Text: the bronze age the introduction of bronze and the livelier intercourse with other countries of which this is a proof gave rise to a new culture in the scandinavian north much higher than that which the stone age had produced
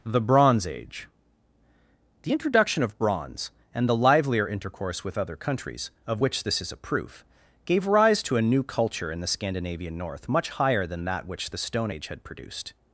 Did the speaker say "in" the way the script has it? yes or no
yes